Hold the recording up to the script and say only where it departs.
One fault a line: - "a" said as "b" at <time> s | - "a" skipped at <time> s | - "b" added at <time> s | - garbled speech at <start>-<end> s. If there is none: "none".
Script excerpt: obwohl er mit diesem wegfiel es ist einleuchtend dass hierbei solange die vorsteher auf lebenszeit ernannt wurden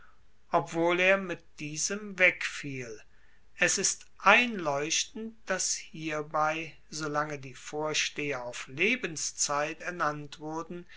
none